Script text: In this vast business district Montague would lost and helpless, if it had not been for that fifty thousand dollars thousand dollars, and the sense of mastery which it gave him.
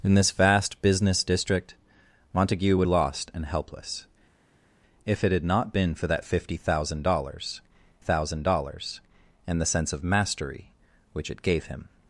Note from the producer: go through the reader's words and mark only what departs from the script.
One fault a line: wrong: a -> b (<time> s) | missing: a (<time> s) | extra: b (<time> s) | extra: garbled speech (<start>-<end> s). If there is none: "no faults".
no faults